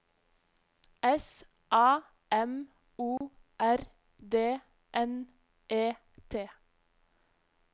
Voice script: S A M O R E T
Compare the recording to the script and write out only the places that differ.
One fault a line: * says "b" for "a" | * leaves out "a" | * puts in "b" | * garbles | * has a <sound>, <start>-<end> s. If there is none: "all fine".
* has a dropout, 3.2-3.2 s
* puts in "D N"